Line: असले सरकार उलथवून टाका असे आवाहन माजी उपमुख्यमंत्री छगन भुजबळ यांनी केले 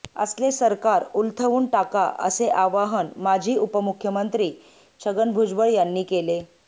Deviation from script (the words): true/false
false